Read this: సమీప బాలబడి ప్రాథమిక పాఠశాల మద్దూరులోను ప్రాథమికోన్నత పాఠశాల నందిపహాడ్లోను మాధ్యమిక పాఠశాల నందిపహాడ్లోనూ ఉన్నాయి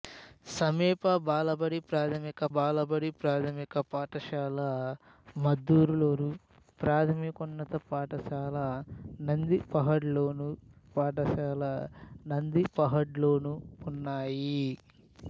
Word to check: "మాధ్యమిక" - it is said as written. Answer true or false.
false